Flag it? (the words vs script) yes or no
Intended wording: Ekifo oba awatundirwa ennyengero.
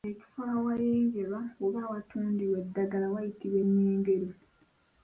yes